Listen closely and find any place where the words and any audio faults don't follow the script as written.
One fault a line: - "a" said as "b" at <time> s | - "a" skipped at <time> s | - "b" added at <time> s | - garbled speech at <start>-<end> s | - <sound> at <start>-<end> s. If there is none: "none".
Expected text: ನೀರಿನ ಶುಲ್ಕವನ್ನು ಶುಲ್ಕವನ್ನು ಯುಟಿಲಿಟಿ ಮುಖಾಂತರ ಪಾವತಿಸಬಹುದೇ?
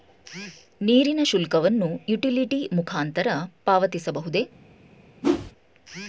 - "ಶುಲ್ಕವನ್ನು" skipped at 1.9 s
- whoosh at 5.2-5.5 s